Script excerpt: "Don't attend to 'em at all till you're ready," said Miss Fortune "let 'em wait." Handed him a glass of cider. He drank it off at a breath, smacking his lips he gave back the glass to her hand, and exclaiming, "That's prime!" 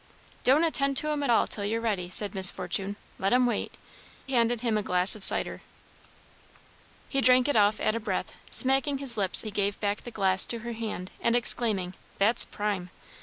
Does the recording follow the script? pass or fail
pass